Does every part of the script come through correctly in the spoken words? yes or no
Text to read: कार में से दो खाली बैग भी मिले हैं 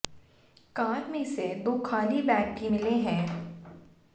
yes